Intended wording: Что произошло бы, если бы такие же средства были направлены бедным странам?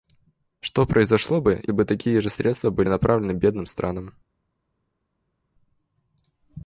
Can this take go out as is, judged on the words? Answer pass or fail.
fail